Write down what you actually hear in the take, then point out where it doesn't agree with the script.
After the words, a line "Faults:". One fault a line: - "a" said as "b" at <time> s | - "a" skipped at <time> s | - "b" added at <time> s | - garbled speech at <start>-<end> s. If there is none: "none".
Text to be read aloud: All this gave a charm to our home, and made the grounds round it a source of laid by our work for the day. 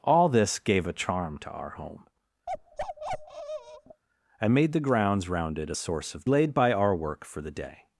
All this gave a charm to our home, and made the grounds round it a source of laid by our work for the day.
Faults:
none